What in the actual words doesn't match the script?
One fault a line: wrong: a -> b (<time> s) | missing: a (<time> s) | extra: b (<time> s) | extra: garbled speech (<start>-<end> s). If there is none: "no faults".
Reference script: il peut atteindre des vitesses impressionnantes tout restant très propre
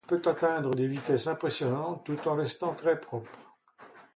extra: en (2.3 s)